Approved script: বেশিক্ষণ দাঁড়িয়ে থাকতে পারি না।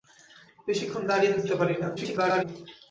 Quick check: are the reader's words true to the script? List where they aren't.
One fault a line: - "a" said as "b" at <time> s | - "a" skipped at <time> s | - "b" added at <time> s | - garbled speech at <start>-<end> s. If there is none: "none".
- garbled speech at 2.0-2.4 s